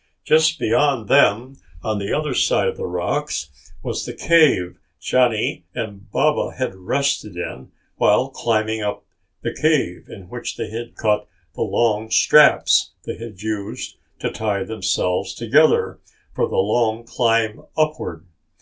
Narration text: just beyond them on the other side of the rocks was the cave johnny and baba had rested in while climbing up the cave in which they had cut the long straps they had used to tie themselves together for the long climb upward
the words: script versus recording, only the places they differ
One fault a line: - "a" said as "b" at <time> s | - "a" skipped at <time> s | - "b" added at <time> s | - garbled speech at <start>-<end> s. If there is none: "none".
none